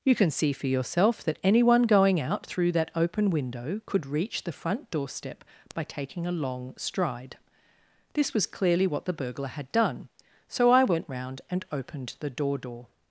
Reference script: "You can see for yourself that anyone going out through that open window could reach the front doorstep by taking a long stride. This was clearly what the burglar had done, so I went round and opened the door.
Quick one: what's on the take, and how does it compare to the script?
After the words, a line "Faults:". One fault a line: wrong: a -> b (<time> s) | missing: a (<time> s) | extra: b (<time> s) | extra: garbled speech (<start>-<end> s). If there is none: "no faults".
"You can see for yourself that anyone going out through that open window could reach the front doorstep by taking a long stride. This was clearly what the burglar had done, so I went round and opened the door door.
Faults:
extra: door (12.6 s)